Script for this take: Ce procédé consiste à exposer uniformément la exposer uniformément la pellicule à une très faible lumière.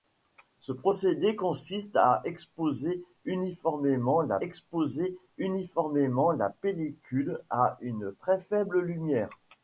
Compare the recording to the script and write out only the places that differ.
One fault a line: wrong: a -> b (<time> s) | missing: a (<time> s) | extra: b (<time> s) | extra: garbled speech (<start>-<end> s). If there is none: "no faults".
no faults